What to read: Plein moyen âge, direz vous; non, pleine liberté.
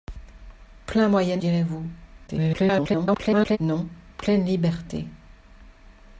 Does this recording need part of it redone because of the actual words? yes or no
yes